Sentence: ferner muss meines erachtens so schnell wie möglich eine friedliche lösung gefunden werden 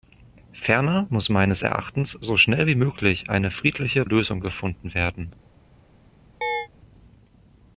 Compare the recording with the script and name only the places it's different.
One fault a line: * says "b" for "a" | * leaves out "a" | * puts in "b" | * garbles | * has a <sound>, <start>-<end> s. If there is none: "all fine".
* has a chirp, 6.4-6.7 s